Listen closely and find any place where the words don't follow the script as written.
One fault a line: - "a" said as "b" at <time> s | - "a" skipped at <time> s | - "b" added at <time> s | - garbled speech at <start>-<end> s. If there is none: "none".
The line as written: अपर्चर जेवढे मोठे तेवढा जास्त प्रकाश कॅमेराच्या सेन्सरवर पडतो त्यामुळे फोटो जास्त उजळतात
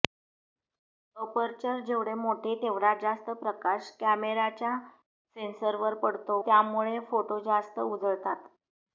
none